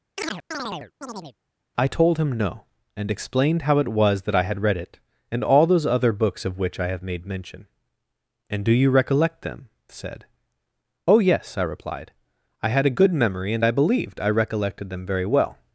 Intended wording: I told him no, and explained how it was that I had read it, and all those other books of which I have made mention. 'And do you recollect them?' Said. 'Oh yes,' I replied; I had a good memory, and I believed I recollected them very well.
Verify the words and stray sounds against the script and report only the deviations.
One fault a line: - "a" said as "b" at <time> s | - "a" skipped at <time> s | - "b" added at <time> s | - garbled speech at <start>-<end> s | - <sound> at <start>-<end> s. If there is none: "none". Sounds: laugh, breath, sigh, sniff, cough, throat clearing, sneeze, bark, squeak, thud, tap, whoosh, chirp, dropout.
- chirp at 0.2-1.4 s